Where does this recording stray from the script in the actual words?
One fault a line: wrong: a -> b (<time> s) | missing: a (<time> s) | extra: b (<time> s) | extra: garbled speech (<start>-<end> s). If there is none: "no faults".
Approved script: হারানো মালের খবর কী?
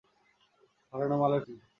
missing: খবর (1.4 s)